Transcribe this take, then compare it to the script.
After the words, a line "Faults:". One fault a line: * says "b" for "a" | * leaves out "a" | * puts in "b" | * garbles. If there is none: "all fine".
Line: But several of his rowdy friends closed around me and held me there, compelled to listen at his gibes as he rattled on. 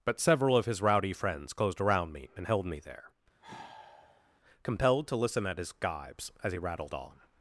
But several of his rowdy friends closed around me and held me there, compelled to listen at his gibes as he rattled on.
Faults:
all fine